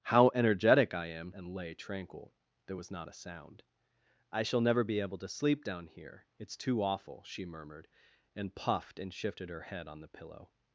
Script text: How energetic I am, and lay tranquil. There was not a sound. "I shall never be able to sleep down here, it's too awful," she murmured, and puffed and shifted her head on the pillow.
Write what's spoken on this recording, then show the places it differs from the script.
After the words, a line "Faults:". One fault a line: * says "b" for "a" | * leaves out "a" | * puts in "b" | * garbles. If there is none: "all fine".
How energetic I am, and lay tranquil. There was not a sound. "I shall never be able to sleep down here, it's too awful," she murmured, and puffed and shifted her head on the pillow.
Faults:
all fine